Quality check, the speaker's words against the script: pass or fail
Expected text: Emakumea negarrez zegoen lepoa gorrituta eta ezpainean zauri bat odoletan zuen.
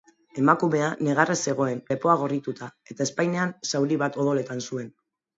pass